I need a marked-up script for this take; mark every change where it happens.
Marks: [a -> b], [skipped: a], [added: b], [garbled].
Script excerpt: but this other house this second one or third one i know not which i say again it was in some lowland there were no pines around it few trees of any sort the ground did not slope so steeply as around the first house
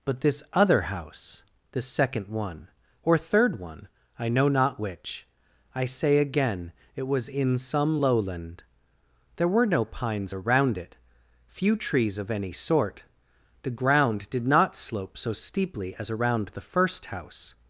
but this other house this second one or third one i know not which i say again it was in some lowland there were no pines around it few trees of any sort the ground did not slope so steeply as around the first house